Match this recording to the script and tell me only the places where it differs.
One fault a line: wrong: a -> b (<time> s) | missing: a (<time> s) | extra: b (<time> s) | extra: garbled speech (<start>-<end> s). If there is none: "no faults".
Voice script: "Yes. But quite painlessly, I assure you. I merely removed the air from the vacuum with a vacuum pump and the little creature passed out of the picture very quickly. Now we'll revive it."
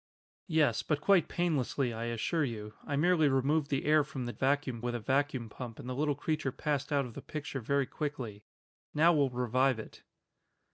no faults